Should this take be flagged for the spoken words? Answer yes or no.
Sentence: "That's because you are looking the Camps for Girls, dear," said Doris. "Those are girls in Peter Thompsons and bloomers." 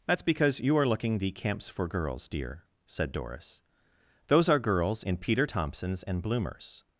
no